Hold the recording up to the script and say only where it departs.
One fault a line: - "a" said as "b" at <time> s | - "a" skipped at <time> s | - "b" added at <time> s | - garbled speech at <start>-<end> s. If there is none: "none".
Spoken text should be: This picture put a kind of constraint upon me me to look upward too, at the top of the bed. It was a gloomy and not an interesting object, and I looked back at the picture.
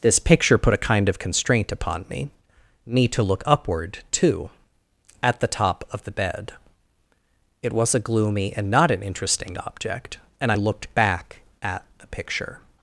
none